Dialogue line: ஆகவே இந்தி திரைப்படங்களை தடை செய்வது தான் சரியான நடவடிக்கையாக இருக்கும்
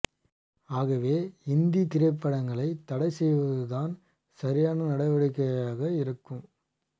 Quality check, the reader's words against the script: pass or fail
pass